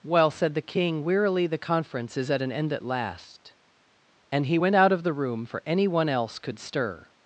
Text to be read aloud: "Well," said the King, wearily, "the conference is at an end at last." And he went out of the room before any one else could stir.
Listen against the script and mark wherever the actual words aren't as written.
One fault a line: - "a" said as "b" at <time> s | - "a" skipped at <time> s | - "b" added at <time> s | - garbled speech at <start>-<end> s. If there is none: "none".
- "before" said as "for" at 5.4 s